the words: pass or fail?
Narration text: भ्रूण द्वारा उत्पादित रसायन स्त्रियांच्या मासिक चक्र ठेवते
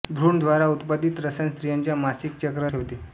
pass